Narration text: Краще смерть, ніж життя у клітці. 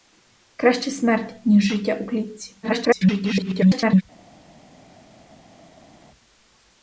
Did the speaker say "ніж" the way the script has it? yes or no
yes